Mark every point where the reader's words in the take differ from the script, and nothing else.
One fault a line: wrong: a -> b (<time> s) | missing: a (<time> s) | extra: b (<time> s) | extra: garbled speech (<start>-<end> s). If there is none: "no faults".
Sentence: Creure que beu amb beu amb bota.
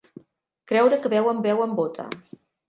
no faults